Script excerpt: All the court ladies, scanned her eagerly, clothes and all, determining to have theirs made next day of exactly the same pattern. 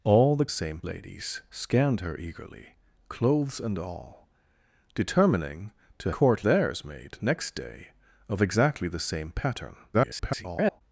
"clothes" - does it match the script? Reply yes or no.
yes